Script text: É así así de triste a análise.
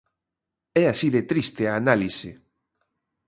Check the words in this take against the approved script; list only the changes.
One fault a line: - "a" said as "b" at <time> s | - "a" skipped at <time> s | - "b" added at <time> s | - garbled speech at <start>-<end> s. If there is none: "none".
- "así" skipped at 1.1 s